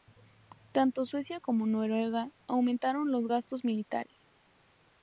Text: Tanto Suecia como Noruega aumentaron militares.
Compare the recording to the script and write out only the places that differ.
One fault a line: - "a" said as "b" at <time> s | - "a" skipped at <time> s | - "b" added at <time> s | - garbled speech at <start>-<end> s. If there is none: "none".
- "los gastos" added at 3.1 s